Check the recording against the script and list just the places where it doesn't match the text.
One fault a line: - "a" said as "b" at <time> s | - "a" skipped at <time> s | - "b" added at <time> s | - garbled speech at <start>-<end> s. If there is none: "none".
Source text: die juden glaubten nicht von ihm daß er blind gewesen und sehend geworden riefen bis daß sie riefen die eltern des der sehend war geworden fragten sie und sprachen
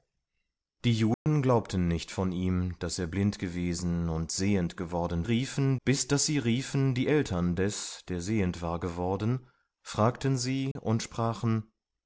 none